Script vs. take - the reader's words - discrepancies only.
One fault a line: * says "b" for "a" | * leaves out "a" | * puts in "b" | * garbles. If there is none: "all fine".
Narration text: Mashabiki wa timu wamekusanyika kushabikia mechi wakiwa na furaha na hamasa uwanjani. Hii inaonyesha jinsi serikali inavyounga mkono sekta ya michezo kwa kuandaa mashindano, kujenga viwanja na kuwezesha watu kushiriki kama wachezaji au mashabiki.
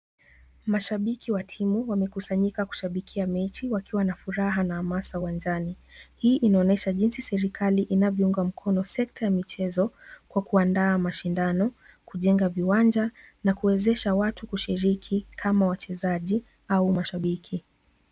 all fine